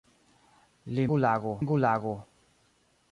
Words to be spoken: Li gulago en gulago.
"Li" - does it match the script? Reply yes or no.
yes